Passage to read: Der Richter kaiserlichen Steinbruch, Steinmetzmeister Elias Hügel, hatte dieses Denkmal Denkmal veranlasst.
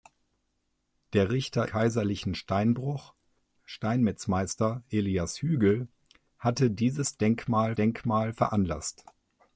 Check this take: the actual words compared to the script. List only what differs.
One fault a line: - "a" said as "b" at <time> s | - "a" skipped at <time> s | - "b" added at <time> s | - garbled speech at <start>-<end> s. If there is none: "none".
none